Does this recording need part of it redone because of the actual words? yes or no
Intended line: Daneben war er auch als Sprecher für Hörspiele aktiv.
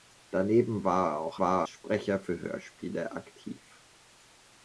yes